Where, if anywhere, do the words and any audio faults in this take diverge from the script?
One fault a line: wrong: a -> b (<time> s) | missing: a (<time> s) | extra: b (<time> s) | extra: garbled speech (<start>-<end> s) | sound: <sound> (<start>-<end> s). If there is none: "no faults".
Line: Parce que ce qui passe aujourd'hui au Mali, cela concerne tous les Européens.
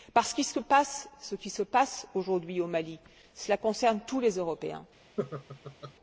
extra: se (1.5 s)
sound: laugh (5.2-5.9 s)